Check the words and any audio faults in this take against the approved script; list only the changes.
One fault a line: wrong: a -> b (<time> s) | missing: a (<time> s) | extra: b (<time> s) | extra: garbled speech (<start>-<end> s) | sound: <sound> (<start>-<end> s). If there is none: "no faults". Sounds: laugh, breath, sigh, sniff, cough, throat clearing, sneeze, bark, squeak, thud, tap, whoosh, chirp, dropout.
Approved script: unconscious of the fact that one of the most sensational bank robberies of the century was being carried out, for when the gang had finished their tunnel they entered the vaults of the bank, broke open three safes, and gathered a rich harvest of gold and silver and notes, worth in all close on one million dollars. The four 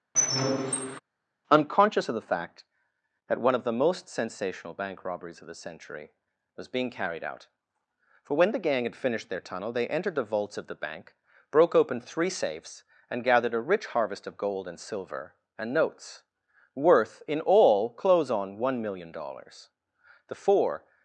sound: squeak (0.1-1.0 s)